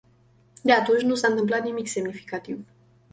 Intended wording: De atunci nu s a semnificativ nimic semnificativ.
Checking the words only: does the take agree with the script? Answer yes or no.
no